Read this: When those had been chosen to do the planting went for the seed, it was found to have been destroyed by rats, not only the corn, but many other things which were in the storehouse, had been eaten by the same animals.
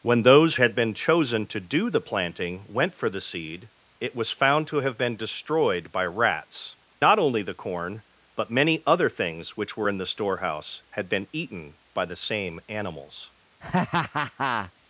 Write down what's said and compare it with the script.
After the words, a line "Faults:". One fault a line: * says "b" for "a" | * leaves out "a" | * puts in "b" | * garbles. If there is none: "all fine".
When those had been chosen to do the planting went for the seed, it was found to have been destroyed by rats, not only the corn, but many other things which were in the storehouse, had been eaten by the same animals.
Faults:
all fine